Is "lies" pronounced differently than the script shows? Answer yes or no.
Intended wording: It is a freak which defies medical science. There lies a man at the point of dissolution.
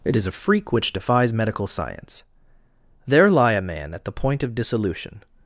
yes